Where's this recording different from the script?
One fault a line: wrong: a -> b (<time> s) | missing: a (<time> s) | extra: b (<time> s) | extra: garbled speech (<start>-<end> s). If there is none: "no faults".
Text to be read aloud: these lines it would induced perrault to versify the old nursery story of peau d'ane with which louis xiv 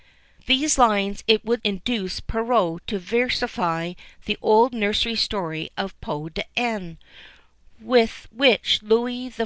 no faults